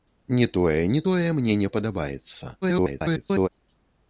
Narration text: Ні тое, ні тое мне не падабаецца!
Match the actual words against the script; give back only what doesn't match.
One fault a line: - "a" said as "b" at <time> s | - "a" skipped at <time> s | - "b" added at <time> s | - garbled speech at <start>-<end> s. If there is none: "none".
- garbled speech at 2.6-3.5 s